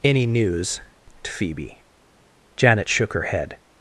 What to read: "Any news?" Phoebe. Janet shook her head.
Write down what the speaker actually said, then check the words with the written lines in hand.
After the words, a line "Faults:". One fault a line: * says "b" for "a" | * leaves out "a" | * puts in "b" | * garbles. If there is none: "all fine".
"Any news?" Phoebe. Janet shook her head.
Faults:
all fine